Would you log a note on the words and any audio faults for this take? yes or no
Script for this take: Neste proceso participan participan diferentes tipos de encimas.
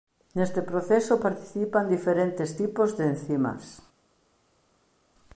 yes